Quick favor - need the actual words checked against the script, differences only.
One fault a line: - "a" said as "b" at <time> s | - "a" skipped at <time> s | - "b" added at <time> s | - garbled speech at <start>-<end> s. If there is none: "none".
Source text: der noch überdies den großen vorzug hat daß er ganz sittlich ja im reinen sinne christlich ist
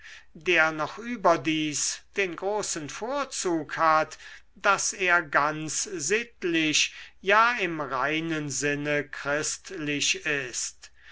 none